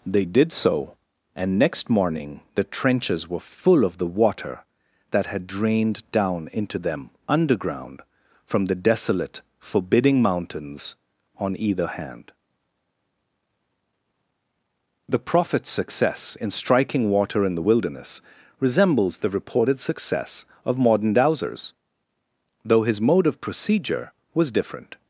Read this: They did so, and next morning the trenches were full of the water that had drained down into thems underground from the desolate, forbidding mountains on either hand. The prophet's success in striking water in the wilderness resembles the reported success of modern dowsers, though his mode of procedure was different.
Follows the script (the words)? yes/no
no